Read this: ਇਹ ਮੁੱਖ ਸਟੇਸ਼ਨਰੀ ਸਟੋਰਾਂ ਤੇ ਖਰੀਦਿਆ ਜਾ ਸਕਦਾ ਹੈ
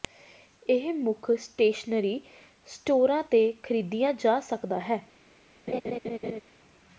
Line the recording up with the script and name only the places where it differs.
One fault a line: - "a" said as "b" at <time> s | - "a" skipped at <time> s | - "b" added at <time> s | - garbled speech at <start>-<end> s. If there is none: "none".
none